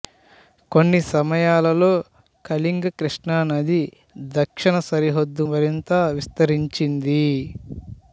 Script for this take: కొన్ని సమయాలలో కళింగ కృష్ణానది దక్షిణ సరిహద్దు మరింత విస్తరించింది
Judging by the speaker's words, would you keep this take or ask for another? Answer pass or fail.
pass